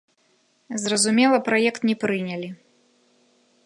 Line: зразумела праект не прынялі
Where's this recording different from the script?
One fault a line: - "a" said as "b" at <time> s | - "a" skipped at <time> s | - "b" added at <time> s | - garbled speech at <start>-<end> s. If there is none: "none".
none